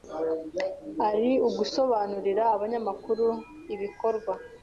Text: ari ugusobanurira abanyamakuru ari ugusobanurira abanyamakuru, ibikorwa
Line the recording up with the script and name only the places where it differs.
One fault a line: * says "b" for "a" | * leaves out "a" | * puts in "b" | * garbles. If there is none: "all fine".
* leaves out "ari ugusobanurira abanyamakuru"